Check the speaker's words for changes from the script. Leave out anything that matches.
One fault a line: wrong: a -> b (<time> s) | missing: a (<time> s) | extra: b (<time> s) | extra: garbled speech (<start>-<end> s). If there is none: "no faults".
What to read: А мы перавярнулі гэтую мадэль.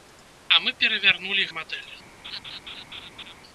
missing: гэтую (1.4 s)